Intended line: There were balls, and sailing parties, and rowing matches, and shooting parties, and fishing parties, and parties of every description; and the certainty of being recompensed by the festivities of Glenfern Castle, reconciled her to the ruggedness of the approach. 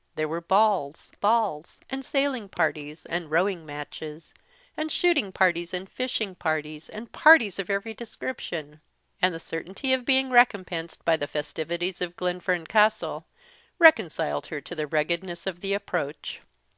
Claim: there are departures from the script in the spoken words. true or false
true